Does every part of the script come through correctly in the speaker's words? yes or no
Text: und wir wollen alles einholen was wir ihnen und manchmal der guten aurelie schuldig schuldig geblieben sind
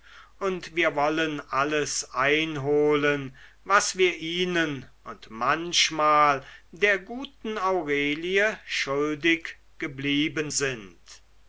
no